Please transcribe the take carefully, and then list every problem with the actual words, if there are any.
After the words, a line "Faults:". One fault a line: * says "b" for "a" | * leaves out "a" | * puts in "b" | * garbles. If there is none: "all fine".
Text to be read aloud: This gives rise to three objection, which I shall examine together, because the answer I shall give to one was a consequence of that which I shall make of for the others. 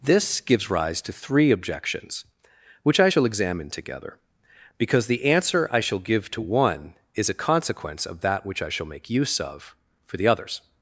This gives rise to three objections, which I shall examine together, because the answer I shall give to one is a consequence of that which I shall make use of for the others.
Faults:
* says "objections" for "objection"
* says "is" for "was"
* puts in "use"